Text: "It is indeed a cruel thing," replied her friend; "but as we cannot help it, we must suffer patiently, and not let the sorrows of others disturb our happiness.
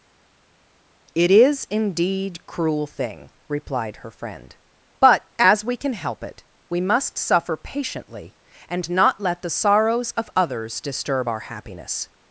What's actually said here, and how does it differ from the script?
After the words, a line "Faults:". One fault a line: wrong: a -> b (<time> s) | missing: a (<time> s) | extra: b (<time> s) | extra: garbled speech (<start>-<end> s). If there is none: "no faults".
"It is indeed cruel thing," replied her friend; "but as we can help it, we must suffer patiently, and not let the sorrows of others disturb our happiness.
Faults:
missing: a (2.4 s)
wrong: cannot -> can (5.8 s)